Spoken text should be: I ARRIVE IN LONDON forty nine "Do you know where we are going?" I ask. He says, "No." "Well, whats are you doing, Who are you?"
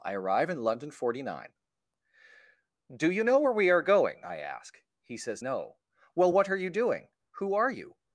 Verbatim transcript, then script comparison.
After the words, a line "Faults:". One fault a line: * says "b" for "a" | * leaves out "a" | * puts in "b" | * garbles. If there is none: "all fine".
I ARRIVE IN LONDON forty nine "Do you know where we are going?" I ask. He says, "No." "Well, what are you doing, Who are you?"
Faults:
* says "what" for "whats"